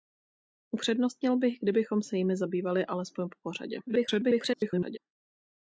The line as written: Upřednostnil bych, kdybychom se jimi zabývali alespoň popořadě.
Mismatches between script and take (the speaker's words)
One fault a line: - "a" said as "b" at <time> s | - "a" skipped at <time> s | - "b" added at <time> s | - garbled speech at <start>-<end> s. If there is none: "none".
- garbled speech at 3.9-5.0 s